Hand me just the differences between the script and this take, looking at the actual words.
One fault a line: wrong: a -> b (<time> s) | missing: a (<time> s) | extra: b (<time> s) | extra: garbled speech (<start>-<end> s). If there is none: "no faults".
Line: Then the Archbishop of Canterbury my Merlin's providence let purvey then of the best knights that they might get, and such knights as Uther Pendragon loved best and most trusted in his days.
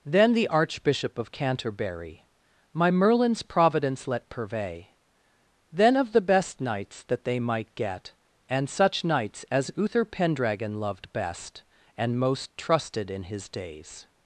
no faults